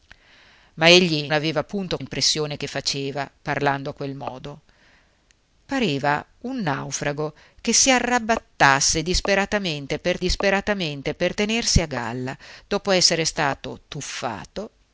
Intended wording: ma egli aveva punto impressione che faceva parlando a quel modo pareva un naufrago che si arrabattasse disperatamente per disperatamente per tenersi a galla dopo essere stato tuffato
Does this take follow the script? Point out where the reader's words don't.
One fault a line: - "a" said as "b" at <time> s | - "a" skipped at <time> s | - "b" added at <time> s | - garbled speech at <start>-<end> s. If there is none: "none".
none